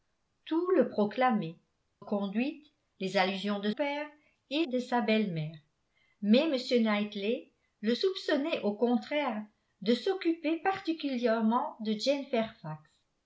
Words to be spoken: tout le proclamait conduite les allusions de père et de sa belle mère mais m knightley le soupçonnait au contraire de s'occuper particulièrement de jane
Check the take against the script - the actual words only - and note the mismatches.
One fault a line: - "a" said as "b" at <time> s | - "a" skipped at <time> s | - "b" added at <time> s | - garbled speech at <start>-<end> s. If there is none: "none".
none